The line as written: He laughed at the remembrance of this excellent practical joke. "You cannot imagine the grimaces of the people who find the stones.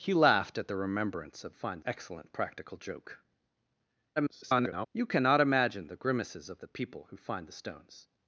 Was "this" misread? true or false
true